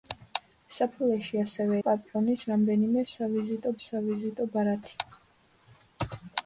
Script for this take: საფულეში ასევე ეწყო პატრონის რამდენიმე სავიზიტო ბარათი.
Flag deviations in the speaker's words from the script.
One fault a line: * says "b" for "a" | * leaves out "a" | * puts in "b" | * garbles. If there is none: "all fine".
* leaves out "ეწყო"
* puts in "სავიზიტო"